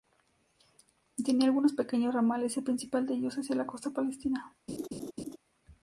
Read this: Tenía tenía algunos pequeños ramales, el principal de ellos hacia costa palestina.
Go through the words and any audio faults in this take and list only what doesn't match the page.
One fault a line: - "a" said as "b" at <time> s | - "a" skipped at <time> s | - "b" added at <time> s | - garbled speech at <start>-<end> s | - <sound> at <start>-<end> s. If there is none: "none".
- "tenía" skipped at 1.4 s
- "la" added at 3.5 s
- laugh at 4.7-5.4 s